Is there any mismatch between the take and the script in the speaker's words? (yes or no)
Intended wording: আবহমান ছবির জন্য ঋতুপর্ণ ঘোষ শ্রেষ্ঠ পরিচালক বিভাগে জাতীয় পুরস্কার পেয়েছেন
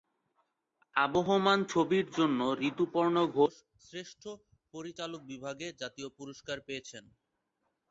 no